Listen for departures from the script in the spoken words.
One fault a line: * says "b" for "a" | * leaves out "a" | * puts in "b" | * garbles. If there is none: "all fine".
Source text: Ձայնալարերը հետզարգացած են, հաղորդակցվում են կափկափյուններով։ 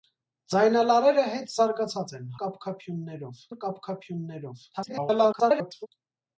* says "կափկափյուններով" for "հաղորդակցվում"
* garbles